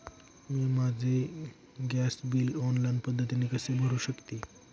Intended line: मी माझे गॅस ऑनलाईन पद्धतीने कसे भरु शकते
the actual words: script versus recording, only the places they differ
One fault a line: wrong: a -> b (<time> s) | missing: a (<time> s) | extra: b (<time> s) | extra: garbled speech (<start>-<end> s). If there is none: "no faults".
extra: बिल (2.3 s)